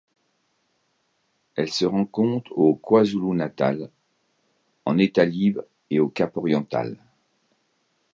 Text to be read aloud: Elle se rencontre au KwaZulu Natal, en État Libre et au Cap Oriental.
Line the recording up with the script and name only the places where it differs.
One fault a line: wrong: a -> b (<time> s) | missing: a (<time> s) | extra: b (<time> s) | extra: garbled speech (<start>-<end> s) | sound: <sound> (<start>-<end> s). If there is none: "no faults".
no faults